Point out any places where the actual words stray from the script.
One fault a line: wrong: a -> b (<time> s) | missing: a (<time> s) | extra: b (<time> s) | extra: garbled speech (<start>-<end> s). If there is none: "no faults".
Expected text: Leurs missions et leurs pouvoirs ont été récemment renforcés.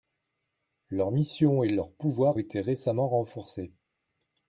missing: ont (2.4 s)